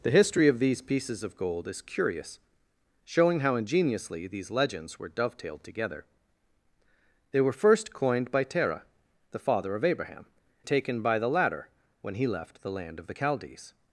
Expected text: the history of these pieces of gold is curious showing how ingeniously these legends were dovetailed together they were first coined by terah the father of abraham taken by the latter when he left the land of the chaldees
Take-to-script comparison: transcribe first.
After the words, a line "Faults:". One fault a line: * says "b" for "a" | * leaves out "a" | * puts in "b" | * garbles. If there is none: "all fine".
the history of these pieces of gold is curious showing how ingeniously these legends were dovetailed together they were first coined by terah the father of abraham taken by the latter when he left the land of the chaldees
Faults:
all fine